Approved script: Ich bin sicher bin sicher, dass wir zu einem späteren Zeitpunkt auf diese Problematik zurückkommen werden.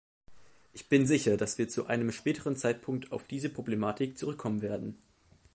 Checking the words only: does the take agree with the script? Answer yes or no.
no